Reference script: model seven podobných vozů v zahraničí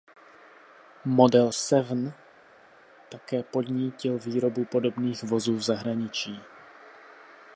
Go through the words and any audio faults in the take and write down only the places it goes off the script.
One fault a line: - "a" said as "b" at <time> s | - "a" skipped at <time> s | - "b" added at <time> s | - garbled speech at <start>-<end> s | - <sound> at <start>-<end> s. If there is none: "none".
- "také podnítil výrobu" added at 3.1 s